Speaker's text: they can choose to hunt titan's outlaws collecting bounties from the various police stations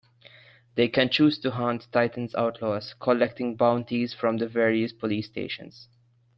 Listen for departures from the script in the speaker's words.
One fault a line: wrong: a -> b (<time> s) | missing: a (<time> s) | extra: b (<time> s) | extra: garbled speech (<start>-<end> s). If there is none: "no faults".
no faults